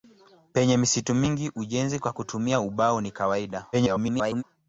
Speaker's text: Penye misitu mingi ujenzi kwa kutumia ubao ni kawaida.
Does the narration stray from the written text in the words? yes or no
yes